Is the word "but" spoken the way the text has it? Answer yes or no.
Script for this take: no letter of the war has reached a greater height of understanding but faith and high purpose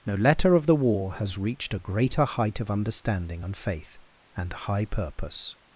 no